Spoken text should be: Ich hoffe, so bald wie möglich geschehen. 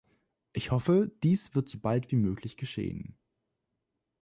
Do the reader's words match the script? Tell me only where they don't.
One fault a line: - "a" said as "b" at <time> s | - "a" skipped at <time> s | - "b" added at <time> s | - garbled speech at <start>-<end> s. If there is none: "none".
- "dies wird" added at 1.2 s